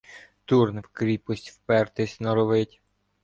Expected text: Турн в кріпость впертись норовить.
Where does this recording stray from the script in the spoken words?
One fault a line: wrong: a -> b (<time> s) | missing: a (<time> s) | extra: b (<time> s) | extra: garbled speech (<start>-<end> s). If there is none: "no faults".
no faults